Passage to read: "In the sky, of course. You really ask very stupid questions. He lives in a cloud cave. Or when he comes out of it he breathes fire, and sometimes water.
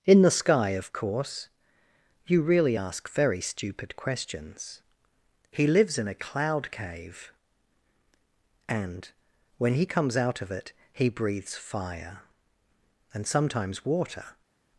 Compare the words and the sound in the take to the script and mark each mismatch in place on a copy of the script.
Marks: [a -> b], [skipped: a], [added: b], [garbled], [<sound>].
"In the sky, of course. You really ask very stupid questions. He lives in a cloud cave. [Or -> And] when he comes out of it he breathes fire, and sometimes water.